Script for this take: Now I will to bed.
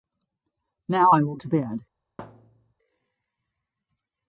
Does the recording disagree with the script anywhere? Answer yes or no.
no